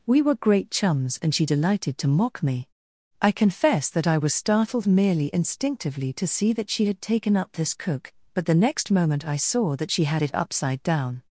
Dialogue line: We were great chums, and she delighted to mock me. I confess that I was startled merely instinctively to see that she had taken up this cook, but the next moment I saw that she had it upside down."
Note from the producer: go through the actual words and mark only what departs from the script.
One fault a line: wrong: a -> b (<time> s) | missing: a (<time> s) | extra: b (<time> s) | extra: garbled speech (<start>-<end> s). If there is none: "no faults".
no faults